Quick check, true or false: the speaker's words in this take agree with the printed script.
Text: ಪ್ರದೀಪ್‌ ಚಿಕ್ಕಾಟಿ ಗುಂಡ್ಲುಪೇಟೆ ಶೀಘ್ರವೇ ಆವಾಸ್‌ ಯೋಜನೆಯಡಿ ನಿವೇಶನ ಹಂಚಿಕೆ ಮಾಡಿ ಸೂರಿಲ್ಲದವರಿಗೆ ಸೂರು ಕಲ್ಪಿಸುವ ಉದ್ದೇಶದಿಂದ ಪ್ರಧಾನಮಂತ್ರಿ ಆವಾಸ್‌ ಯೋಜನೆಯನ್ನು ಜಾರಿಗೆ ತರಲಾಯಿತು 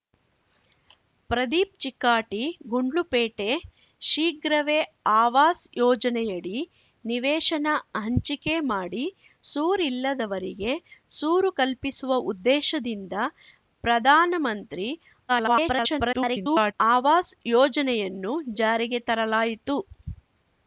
false